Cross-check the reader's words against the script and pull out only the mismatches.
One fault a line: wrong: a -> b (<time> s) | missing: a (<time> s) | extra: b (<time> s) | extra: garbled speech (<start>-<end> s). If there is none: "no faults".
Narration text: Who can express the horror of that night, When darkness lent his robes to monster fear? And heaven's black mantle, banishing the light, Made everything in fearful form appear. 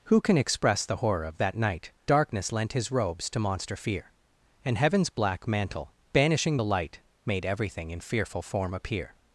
missing: When (1.9 s)